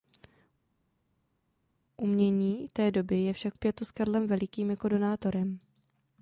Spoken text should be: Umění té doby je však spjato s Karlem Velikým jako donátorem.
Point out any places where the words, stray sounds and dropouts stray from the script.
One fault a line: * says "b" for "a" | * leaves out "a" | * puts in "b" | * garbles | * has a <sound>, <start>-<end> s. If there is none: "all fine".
all fine